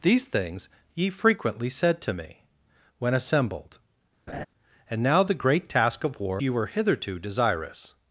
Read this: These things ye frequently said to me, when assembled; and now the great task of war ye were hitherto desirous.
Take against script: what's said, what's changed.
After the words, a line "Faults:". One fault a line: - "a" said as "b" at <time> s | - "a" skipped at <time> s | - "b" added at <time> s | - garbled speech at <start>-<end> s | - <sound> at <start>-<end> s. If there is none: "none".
These things ye frequently said to me, when assembled; and now the great task of war ye were hitherto desirous.
Faults:
- laugh at 4.3-4.5 s